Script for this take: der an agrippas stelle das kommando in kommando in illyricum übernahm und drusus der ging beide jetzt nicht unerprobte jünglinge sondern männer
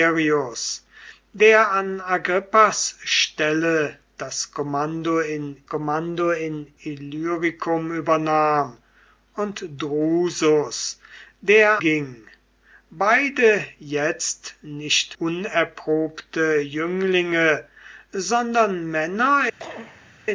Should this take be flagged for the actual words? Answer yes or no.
no